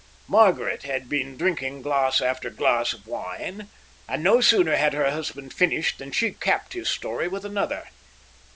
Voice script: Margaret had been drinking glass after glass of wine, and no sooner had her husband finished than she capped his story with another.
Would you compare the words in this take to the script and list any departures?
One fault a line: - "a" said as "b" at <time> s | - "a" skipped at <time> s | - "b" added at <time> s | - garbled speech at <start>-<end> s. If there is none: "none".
none